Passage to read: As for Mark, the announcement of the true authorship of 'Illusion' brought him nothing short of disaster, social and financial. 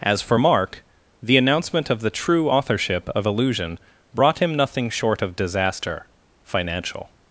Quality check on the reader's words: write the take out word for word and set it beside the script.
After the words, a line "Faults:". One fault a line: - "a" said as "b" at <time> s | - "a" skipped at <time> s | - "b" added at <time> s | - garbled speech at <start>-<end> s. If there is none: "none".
As for Mark, the announcement of the true authorship of 'Illusion' brought him nothing short of disaster, financial.
Faults:
- "social and" skipped at 6.1 s